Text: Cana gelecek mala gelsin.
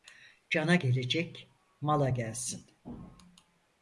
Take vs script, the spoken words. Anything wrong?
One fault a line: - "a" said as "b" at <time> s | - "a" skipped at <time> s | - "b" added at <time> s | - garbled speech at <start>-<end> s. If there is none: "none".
none